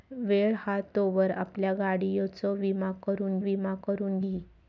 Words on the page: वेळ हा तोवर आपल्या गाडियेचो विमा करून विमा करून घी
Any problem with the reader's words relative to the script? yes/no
no